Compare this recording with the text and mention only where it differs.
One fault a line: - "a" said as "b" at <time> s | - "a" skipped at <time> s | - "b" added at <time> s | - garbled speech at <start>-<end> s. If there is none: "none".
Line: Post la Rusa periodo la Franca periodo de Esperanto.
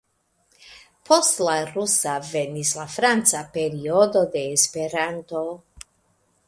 - "periodo" said as "venis" at 2.3 s